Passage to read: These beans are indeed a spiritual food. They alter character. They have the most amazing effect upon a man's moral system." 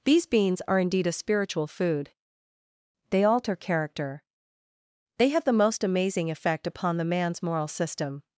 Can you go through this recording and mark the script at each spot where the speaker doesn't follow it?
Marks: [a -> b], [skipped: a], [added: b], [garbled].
These beans are indeed a spiritual food. They alter character. They have the most amazing effect upon [a -> the] man's moral system."